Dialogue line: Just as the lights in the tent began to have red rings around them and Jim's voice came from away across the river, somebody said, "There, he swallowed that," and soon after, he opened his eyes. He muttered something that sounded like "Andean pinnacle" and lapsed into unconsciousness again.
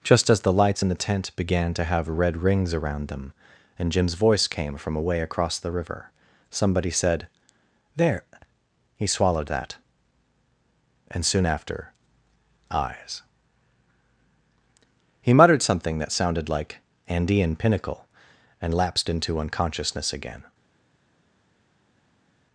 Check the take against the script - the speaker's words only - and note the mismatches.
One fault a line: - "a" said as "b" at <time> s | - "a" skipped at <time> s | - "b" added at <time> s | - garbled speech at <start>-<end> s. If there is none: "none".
- "he opened his" skipped at 11.9 s